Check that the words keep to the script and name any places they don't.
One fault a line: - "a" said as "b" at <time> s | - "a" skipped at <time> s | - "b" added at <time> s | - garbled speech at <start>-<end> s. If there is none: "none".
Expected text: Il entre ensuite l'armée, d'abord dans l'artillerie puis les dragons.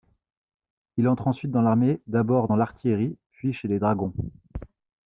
- "dans" added at 1.5 s
- "chez" added at 3.5 s